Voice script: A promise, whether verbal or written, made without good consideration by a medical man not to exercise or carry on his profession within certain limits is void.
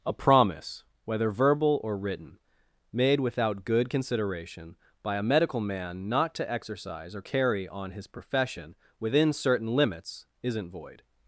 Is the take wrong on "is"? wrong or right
wrong